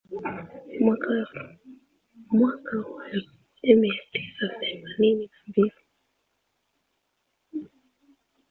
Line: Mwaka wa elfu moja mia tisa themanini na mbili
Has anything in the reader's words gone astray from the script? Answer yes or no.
no